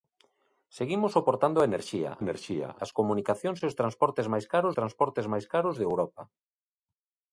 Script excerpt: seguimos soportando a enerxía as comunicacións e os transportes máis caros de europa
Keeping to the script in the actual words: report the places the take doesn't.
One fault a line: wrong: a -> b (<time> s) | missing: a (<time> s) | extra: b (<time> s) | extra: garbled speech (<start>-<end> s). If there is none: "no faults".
extra: enerxía (2.2 s)
extra: transportes máis caros (4.8 s)